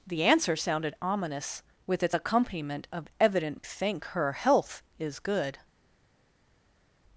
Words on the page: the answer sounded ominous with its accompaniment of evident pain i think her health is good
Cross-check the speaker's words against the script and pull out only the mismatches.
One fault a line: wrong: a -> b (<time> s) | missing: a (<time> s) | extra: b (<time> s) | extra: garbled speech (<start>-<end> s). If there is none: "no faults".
missing: pain i (3.6 s)